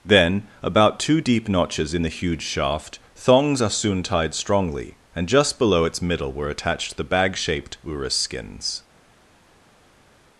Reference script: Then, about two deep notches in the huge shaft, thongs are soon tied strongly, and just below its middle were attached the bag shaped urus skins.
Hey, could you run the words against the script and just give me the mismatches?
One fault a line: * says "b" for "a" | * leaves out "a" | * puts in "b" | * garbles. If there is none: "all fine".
all fine